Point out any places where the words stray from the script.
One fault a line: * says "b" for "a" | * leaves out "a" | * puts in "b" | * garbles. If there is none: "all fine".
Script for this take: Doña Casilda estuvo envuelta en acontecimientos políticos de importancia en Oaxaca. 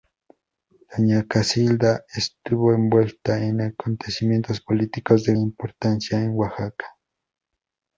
all fine